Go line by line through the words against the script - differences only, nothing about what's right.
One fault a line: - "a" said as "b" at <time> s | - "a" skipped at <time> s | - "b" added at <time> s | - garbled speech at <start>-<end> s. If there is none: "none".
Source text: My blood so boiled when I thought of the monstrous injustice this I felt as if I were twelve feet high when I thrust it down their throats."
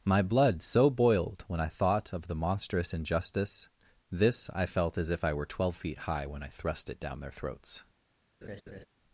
none